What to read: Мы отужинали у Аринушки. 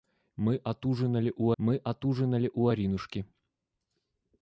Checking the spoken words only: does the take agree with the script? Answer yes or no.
no